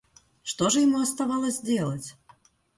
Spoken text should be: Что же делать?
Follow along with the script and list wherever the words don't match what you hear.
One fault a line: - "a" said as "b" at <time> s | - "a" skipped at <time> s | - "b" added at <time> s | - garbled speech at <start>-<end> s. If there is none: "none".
- "ему оставалось" added at 0.8 s